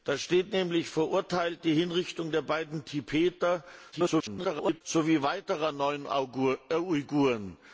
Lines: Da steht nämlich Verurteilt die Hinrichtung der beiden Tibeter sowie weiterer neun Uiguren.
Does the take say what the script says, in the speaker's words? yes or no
no